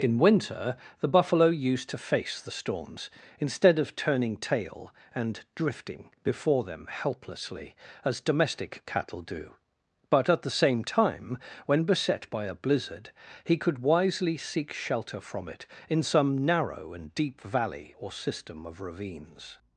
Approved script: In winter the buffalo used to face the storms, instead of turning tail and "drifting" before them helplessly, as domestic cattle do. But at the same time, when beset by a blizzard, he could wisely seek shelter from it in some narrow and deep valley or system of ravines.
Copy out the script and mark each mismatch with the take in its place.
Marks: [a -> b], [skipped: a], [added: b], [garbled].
In winter the buffalo used to face the storms, instead of turning tail and "drifting" before them helplessly, as domestic cattle do. But at the same time, when beset by a blizzard, he could wisely seek shelter from it in some narrow and deep valley or system of ravines.